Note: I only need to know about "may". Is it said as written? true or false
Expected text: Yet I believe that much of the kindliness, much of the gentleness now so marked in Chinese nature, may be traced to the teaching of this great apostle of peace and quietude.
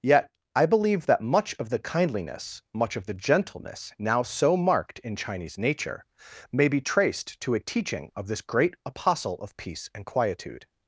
true